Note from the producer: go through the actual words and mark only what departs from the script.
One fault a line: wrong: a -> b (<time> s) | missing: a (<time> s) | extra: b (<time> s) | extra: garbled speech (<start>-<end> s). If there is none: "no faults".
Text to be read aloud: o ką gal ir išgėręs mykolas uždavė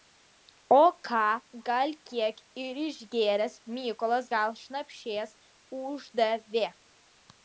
extra: kiek (2.1 s)
extra: gal šnapšės (4.3 s)